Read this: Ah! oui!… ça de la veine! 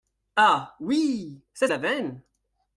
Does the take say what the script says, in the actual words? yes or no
yes